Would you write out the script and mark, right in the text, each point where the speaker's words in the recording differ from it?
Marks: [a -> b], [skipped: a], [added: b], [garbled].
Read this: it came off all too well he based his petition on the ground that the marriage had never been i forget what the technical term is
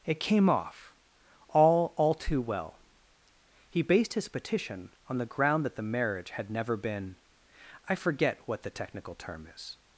it came off all [added: all] too well he based his petition on the ground that the marriage had never been i forget what the technical term is